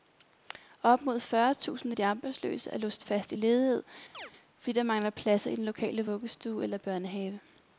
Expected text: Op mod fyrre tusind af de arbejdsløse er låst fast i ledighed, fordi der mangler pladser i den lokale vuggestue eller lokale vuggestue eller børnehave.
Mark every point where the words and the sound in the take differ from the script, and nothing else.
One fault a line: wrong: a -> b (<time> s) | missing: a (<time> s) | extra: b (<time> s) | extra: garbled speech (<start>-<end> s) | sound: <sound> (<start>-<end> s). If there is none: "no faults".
sound: chirp (4.1-4.3 s)
missing: lokale vuggestue eller (6.8 s)